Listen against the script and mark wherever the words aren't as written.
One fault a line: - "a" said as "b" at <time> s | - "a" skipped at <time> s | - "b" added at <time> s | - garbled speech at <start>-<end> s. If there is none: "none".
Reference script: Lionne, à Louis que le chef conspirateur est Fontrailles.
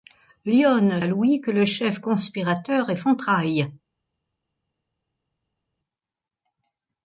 none